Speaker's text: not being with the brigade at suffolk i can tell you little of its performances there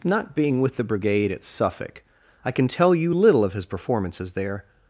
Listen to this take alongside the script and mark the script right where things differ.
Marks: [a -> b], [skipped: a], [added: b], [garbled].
not being with the brigade at suffolk i can tell you little of [its -> his] performances there